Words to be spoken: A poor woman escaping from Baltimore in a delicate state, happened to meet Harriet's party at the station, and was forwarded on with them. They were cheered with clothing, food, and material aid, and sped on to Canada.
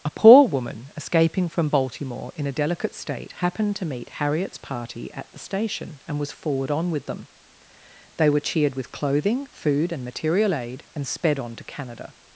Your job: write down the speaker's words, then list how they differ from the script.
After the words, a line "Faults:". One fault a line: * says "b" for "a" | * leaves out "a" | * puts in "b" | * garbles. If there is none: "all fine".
A poor woman escaping from Baltimore in a delicate state, happened to meet Harriet's party at the station, and was forward on with them. They were cheered with clothing, food, and material aid, and sped on to Canada.
Faults:
* says "forward" for "forwarded"